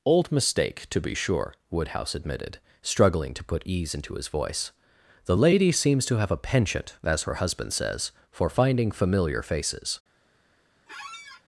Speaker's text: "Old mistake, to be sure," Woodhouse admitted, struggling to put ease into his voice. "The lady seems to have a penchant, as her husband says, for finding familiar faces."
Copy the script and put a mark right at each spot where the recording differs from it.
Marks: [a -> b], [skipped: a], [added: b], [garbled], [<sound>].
"Old mistake, to be sure," Woodhouse admitted, struggling to put ease into his voice. "The lady seems to have a penchant, as her husband says, for finding familiar faces." [squeak]